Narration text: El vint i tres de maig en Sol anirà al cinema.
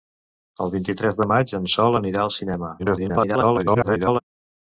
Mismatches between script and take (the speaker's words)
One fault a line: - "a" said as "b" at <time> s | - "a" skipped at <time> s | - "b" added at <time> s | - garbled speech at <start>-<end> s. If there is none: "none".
- garbled speech at 2.8-4.2 s